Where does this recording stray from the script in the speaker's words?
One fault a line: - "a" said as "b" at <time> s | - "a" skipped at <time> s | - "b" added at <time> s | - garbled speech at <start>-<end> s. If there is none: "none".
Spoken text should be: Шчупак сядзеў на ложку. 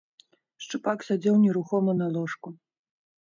- "нерухома" added at 1.4 s